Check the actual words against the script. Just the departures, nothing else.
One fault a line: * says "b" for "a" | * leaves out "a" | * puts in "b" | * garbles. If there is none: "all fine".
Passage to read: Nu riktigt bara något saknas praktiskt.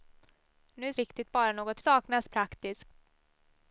all fine